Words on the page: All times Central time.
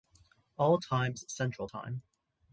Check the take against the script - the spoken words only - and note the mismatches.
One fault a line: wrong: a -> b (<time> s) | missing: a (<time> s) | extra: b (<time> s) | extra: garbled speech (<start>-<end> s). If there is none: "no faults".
no faults